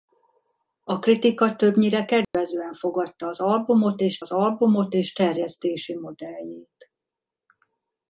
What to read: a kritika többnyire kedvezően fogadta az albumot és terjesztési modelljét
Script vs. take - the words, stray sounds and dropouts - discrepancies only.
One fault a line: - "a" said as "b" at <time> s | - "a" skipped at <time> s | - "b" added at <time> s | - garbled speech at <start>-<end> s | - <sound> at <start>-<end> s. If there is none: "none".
- dropout at 2.2-2.3 s
- "az albumot és" added at 4.2 s